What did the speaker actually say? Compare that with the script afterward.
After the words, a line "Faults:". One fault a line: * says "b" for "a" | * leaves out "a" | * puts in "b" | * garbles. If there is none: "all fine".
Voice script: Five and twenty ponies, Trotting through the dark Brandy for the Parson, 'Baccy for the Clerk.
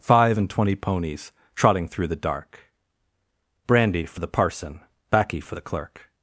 Five and twenty ponies, Trotting through the dark Brandy for the Parson, 'Baccy for the Clerk.
Faults:
all fine